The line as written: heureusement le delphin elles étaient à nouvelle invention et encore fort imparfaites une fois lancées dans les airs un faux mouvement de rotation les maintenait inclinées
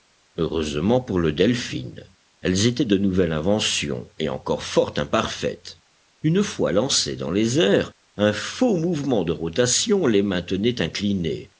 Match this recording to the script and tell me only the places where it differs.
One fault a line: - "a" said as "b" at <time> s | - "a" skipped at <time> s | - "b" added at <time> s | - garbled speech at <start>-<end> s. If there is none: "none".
- "pour" added at 1.0 s
- "à" said as "de" at 2.9 s